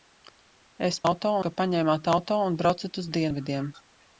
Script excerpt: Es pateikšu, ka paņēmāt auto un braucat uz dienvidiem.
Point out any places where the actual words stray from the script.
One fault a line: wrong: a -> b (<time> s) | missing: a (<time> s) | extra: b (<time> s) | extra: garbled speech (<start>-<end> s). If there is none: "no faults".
wrong: pateikšu -> auto (1.1 s)